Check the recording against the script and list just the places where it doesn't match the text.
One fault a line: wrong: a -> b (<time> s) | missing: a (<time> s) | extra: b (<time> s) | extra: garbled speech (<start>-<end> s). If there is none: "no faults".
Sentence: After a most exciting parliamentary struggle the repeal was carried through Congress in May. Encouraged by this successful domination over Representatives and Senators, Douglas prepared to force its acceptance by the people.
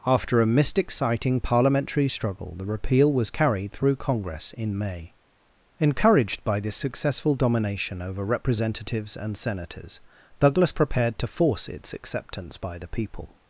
wrong: most -> mist (0.5 s)